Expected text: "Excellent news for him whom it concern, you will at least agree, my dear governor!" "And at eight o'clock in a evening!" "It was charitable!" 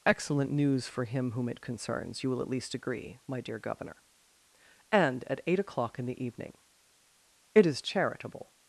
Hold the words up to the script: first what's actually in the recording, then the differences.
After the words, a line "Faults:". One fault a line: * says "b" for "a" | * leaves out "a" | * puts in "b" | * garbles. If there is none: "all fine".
"Excellent news for him whom it concerns, you will at least agree, my dear governor!" "And at eight o'clock in the evening!" "It is charitable!"
Faults:
* says "concerns" for "concern"
* says "the" for "a"
* says "is" for "was"